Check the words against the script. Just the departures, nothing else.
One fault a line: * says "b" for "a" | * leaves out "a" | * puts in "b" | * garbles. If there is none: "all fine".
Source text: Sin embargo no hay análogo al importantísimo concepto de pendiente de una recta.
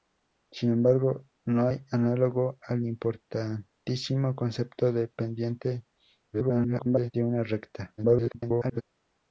* garbles
* garbles